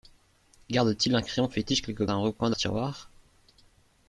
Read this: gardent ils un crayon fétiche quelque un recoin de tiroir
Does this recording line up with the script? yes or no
yes